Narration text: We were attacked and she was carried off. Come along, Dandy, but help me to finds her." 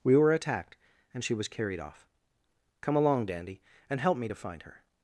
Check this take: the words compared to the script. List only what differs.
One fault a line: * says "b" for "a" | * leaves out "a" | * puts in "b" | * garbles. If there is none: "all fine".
* says "and" for "but"
* says "find" for "finds"